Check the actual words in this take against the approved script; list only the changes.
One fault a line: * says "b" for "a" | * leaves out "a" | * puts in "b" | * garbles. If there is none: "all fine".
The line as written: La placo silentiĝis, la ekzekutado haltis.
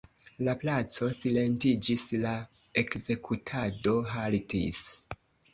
all fine